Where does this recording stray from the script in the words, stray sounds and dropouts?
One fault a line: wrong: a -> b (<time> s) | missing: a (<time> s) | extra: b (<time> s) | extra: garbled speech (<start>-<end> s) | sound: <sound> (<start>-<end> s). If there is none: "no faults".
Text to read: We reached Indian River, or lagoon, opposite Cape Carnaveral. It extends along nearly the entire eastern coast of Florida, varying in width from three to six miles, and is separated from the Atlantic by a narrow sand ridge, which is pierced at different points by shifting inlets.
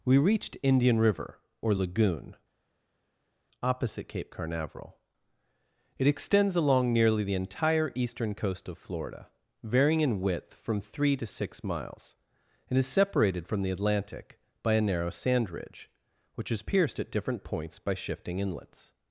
no faults